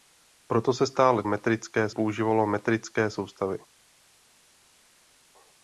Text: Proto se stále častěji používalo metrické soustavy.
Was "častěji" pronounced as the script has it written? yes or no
no